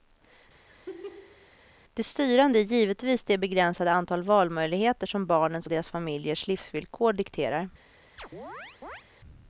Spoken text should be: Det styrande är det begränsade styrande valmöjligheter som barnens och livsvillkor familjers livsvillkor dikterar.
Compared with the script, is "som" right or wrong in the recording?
right